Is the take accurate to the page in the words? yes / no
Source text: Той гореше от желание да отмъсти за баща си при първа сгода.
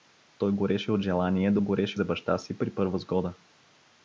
no